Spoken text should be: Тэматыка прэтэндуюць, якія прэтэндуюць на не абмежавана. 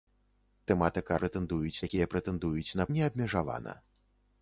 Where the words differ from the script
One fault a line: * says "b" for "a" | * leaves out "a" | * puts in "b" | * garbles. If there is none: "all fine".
all fine